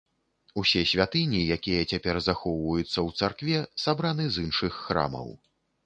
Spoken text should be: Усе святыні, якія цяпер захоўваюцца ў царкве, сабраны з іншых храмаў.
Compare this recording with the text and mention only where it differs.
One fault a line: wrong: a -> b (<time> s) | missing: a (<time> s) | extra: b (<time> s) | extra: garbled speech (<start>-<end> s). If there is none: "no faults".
no faults